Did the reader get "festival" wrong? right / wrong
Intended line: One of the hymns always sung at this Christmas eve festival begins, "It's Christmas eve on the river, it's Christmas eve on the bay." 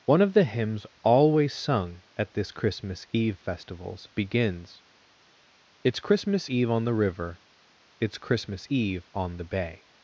wrong